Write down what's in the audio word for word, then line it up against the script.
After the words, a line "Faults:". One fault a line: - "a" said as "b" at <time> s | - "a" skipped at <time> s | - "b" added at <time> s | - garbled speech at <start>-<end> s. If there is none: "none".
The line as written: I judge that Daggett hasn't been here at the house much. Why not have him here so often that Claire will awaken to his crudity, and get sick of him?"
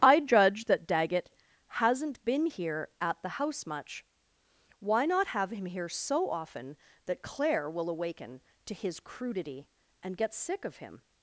I judge that Daggett hasn't been here at the house much. Why not have him here so often that Claire will awaken to his crudity, and get sick of him?"
Faults:
none